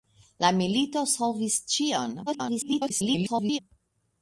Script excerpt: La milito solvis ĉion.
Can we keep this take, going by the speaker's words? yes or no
no